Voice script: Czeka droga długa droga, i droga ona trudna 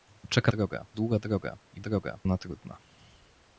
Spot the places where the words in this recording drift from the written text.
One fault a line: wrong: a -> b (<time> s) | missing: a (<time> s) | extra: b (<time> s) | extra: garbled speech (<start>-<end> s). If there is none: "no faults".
no faults